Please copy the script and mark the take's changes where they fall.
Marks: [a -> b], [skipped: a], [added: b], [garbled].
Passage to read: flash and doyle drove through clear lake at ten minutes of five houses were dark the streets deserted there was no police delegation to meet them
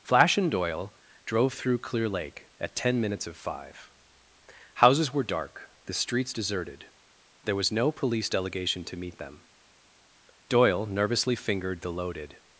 flash and doyle drove through clear lake at ten minutes of five houses were dark the streets deserted there was no police delegation to meet them [added: doyle nervously fingered the loaded]